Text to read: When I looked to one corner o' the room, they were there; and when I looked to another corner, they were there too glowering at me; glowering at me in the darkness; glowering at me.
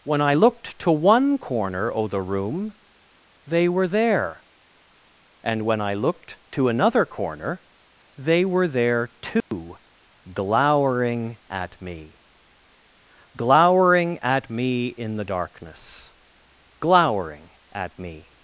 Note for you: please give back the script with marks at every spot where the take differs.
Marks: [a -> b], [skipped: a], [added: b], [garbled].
When I looked to one corner o' the room, they were there; and when I looked to another corner, they were there too glowering at me; glowering at me in the darkness; glowering at me.